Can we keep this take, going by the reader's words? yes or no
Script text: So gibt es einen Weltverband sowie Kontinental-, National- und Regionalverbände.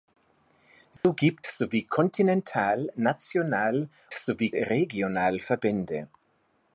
no